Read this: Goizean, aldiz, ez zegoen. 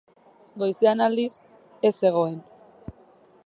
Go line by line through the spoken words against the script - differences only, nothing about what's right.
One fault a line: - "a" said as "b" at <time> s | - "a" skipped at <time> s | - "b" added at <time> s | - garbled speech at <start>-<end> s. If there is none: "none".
none